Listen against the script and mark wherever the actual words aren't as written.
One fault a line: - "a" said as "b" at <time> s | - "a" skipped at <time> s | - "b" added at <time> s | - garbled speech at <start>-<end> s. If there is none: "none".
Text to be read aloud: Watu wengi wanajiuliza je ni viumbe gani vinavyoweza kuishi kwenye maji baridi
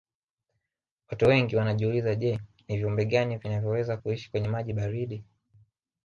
none